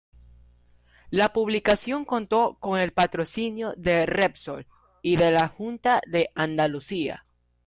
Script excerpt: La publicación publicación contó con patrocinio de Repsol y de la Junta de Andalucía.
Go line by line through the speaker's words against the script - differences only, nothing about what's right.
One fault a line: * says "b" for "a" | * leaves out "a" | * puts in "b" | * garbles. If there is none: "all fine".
* leaves out "publicación"
* puts in "el"